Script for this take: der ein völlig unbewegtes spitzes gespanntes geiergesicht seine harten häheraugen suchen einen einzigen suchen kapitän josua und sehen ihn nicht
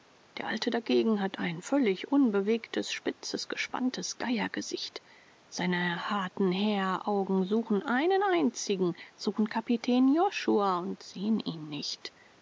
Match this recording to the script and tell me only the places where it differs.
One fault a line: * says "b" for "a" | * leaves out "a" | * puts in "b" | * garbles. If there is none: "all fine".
* puts in "alte dagegen hat"